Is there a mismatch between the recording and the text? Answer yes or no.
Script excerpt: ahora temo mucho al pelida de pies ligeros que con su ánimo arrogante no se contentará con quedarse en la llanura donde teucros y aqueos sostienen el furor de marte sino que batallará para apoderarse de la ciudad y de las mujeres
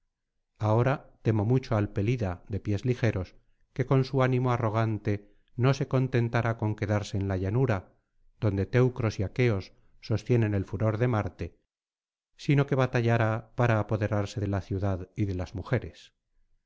no